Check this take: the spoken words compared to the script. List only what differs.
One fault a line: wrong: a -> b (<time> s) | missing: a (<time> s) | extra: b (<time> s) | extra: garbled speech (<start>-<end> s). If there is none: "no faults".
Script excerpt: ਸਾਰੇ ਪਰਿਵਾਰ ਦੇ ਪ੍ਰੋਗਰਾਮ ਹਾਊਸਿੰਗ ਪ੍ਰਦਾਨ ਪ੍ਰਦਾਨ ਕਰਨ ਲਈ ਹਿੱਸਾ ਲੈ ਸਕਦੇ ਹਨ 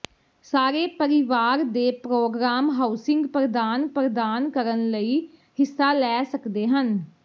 no faults